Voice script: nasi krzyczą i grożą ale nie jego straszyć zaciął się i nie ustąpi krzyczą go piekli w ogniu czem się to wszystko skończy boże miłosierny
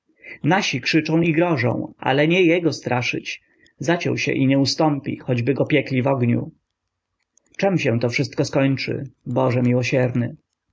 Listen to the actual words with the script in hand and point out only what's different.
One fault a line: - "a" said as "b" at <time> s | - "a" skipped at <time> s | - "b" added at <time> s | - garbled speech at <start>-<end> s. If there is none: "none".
- "krzyczą" said as "choćby" at 5.2 s